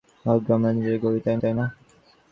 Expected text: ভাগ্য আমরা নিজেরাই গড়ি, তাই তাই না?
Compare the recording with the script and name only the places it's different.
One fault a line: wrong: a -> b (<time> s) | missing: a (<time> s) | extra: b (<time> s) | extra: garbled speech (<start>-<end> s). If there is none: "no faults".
no faults